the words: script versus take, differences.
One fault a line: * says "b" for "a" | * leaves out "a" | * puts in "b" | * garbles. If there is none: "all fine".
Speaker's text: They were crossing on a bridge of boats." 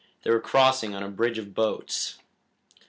all fine